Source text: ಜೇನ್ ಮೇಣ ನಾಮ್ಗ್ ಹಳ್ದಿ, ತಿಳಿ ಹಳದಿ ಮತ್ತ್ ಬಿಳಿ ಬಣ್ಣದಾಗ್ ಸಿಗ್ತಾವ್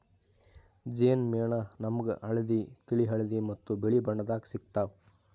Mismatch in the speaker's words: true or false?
false